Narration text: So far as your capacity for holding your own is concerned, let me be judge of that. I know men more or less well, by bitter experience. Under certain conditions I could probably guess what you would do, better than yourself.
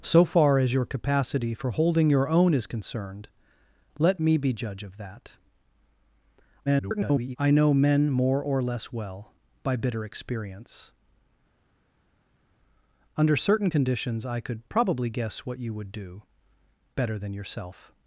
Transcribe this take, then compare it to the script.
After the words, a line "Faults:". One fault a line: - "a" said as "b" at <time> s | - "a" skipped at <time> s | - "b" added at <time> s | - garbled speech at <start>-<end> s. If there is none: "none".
So far as your capacity for holding your own is concerned, let me be judge of that. [garbled] I know men more or less well, by bitter experience. Under certain conditions I could probably guess what you would do, better than yourself.
Faults:
- garbled speech at 6.7-7.4 s